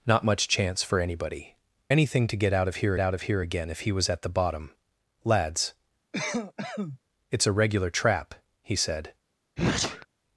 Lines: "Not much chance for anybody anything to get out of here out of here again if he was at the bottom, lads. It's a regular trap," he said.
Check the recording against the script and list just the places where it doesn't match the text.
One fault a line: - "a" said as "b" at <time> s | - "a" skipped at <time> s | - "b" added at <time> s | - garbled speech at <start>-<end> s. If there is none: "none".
none